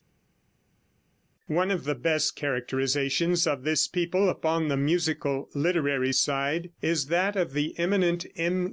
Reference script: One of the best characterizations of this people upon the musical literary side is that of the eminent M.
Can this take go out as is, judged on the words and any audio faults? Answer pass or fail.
pass